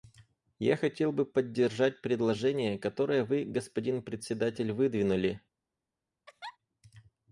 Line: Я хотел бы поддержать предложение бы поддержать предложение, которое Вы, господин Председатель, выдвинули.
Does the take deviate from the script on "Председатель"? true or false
false